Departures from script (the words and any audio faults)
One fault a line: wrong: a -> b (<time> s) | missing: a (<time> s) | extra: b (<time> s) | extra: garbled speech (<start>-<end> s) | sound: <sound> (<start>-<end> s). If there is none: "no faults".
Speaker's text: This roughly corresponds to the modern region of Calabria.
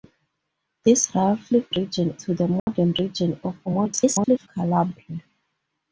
wrong: corresponds -> region (1.8 s)
sound: dropout (2.6-2.7 s)
extra: garbled speech (3.7-4.5 s)